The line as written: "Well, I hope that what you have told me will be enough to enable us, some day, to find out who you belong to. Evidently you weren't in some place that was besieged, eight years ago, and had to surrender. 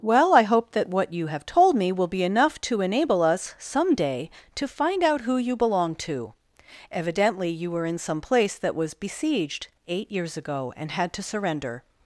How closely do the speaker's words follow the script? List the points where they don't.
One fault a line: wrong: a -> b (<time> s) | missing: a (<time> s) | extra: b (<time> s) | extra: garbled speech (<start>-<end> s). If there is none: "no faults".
wrong: weren't -> were (7.7 s)